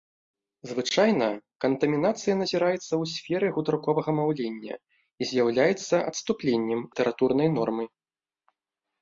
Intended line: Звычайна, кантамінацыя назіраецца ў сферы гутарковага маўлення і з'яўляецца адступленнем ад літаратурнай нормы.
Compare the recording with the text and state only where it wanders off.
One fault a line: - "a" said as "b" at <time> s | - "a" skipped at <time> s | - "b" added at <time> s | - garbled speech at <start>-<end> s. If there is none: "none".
- "ад" skipped at 6.8 s